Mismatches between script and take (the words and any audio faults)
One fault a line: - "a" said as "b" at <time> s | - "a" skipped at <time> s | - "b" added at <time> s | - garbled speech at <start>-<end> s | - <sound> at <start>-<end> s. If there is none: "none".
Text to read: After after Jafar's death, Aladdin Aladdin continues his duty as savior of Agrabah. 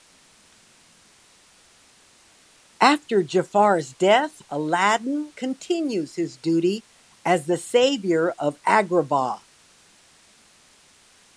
- "after" skipped at 3.2 s
- "Aladdin" skipped at 5.3 s
- "the" added at 7.5 s